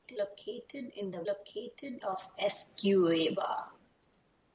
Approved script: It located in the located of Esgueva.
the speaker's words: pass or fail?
pass